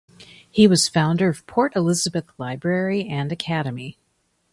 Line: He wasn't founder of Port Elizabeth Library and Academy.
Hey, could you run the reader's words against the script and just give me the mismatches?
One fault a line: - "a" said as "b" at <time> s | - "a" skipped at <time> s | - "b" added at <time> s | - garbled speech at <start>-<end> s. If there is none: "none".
- "wasn't" said as "was" at 0.7 s